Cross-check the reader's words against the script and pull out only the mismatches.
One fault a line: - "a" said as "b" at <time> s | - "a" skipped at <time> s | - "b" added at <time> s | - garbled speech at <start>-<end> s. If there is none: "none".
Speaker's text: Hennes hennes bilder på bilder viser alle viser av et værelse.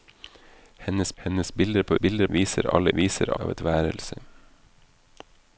none